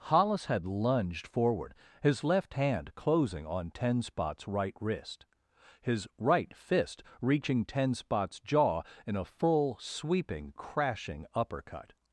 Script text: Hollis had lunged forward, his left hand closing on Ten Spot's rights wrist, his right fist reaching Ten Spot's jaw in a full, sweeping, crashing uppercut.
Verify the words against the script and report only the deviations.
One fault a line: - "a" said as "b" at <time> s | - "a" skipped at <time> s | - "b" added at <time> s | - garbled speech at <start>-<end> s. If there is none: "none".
- "rights" said as "right" at 4.5 s